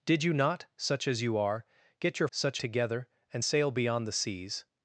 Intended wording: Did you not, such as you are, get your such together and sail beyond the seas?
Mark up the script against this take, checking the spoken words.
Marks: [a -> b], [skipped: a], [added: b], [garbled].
Did you not, such as you are, get your such together and sail beyond the seas?